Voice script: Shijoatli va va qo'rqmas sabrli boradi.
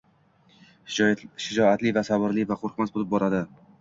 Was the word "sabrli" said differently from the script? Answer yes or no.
yes